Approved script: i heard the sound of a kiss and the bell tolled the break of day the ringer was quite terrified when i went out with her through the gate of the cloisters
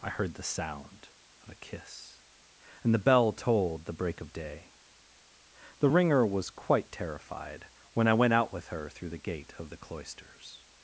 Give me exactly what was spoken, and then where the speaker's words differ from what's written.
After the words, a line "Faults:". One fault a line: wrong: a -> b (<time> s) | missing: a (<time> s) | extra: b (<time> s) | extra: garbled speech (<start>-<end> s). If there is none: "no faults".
i heard the sound of a kiss and the bell tolled the break of day the ringer was quite terrified when i went out with her through the gate of the cloisters
Faults:
no faults